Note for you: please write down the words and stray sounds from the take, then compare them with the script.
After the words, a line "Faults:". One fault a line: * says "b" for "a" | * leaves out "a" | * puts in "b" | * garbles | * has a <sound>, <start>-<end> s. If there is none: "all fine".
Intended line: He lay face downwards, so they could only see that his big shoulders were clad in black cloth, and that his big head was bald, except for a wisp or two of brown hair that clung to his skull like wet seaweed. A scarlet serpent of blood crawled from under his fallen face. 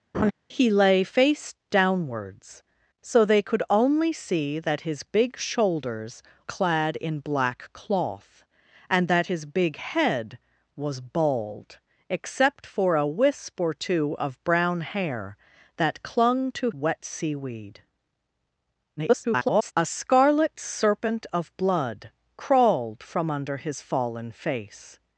He lay face downwards, so they could only see that his big shoulders clad in black cloth, and that his big head was bald, except for a wisp or two of brown hair that clung to wet seaweed. [garbled] A scarlet serpent of blood crawled from under his fallen face.
Faults:
* has a laugh, 0.1-0.3 s
* leaves out "were"
* leaves out "his skull like"
* garbles